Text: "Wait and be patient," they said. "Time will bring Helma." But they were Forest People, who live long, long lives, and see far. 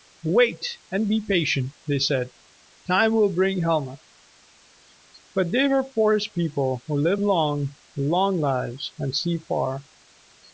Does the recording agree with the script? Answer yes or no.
yes